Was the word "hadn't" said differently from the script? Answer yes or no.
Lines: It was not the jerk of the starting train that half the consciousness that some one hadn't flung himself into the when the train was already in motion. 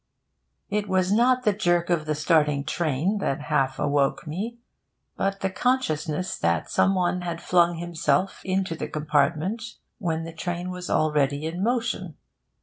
yes